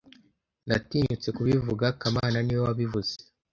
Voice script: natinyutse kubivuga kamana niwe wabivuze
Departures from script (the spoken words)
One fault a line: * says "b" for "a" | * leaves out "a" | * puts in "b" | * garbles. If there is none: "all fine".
all fine